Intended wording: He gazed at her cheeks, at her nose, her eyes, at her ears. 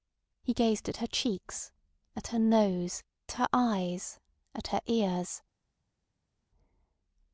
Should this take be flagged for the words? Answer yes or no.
no